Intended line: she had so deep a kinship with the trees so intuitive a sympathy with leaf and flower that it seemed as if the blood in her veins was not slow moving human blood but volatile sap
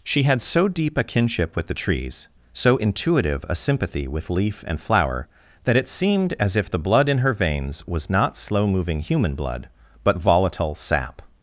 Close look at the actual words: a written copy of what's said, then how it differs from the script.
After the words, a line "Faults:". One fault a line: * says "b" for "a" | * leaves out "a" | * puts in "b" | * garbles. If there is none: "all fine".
she had so deep a kinship with the trees so intuitive a sympathy with leaf and flower that it seemed as if the blood in her veins was not slow moving human blood but volatile sap
Faults:
all fine